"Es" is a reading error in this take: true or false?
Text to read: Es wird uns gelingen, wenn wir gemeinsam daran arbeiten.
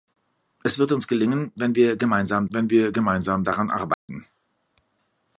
false